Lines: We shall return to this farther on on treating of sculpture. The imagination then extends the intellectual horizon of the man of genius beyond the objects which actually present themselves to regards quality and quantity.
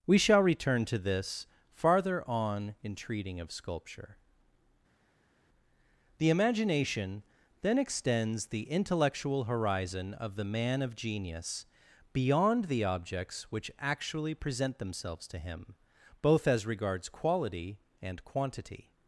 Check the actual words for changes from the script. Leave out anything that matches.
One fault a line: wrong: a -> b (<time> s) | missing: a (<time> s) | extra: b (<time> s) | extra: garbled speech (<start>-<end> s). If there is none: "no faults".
wrong: on -> in (2.8 s)
extra: him both as (15.4 s)